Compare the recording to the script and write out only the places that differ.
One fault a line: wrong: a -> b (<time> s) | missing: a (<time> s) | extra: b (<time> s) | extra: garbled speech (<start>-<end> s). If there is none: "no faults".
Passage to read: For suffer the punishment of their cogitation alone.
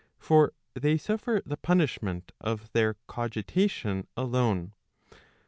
extra: they (0.7 s)